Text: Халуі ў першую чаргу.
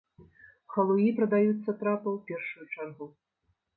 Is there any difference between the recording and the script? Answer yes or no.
yes